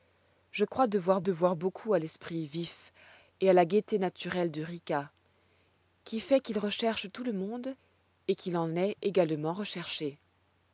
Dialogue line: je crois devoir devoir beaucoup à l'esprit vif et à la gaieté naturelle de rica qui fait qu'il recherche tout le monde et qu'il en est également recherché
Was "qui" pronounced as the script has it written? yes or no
yes